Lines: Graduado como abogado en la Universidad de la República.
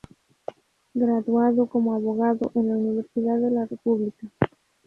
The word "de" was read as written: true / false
true